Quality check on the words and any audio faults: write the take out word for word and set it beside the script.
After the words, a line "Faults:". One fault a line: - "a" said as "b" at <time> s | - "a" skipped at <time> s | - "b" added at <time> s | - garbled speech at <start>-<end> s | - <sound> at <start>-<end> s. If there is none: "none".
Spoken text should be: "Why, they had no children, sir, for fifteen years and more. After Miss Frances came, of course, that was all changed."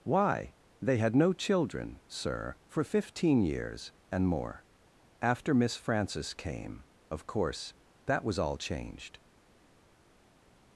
"Why, they had no children, sir, for fifteen years and more. After Miss Frances came, of course, that was all changed."
Faults:
none